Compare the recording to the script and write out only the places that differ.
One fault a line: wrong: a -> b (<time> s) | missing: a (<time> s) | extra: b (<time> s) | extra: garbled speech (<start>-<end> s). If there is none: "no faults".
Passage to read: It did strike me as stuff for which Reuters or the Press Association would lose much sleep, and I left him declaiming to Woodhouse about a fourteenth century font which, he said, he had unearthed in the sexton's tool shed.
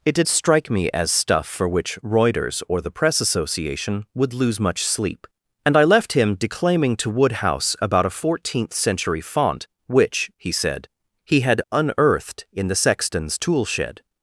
no faults